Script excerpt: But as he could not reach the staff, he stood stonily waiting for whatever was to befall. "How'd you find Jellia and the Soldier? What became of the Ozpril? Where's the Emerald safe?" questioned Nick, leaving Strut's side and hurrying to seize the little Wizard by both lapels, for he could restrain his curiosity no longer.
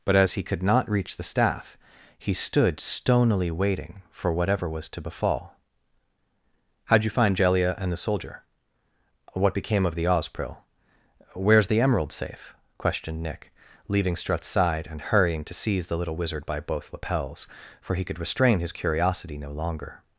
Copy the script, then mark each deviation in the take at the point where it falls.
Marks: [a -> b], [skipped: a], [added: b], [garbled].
But as he could not reach the staff, he stood stonily waiting for whatever was to befall. "How'd you find Jellia and the Soldier? What became of the Ozpril? Where's the Emerald safe?" questioned Nick, leaving Strut's side and hurrying to seize the little Wizard by both lapels, for he could restrain his curiosity no longer.